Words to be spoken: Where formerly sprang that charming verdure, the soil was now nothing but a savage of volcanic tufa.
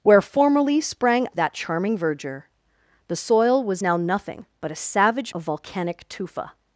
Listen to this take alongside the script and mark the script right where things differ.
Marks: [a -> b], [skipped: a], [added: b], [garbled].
Where formerly sprang that charming verdure, the soil was now nothing but a savage of volcanic tufa.